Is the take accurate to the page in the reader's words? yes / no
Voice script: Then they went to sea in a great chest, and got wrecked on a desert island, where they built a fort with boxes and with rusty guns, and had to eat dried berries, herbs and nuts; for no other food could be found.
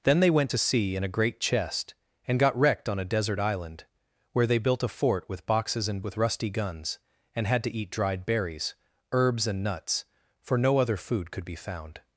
yes